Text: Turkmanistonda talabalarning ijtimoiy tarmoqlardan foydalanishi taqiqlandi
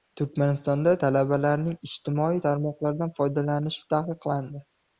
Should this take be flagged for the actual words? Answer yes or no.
no